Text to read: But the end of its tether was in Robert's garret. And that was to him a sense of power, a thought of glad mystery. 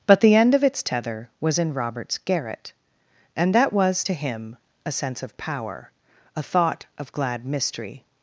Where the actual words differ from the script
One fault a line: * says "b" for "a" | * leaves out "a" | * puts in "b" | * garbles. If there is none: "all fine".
all fine